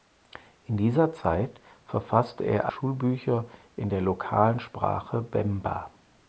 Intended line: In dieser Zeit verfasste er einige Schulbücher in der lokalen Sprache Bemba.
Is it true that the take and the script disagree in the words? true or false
true